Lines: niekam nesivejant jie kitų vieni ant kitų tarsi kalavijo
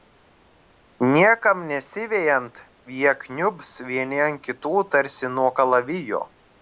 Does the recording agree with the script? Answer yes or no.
no